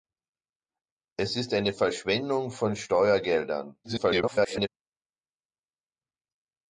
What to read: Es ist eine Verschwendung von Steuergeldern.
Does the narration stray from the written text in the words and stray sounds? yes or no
yes